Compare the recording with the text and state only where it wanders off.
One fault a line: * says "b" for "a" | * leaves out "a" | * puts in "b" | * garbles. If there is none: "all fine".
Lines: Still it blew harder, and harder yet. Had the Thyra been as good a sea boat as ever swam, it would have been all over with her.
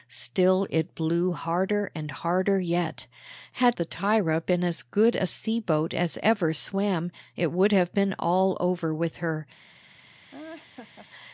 all fine